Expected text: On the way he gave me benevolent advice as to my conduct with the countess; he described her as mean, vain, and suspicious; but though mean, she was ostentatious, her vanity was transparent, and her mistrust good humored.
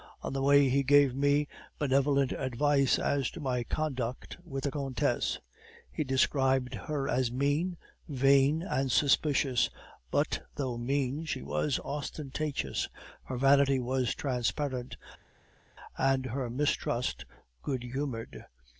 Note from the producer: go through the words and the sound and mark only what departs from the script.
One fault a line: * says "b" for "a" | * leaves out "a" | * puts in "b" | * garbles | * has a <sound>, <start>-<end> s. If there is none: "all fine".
all fine